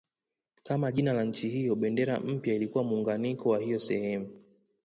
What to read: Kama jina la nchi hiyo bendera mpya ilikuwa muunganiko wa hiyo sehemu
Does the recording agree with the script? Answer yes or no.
yes